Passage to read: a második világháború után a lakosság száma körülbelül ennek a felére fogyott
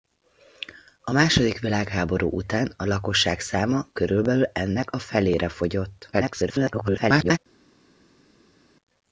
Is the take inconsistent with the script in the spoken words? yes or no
yes